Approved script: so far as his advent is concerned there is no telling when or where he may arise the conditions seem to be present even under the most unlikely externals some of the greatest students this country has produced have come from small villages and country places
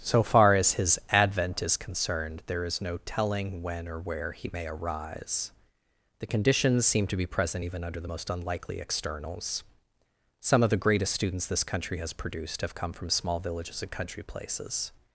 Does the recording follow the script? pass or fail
pass